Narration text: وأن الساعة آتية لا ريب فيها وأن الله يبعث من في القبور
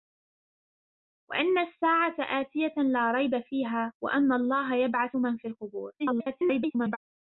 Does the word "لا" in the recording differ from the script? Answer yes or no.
no